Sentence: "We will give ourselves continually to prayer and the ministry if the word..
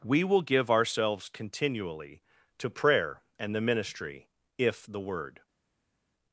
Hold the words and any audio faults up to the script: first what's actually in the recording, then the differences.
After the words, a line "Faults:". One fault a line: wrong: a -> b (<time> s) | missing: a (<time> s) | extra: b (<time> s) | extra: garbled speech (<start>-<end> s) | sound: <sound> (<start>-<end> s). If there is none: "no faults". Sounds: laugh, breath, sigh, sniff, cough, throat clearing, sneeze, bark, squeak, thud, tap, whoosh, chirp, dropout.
"We will give ourselves continually to prayer and the ministry if the word..
Faults:
no faults